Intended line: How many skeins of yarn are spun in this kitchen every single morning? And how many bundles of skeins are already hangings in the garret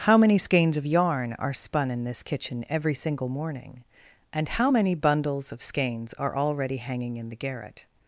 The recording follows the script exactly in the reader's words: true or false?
false